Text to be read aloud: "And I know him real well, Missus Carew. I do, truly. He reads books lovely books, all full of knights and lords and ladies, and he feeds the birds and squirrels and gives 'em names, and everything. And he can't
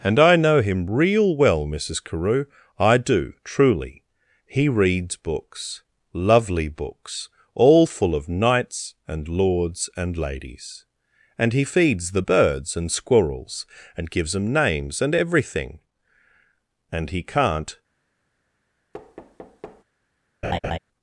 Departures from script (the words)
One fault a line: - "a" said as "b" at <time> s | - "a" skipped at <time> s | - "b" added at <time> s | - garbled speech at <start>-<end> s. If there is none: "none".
none